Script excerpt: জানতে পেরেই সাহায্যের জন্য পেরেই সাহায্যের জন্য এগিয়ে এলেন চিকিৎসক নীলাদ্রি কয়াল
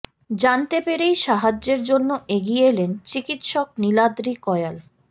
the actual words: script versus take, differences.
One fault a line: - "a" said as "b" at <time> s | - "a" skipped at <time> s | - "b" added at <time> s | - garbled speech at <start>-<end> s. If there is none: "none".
- "পেরেই সাহায্যের জন্য" skipped at 2.1 s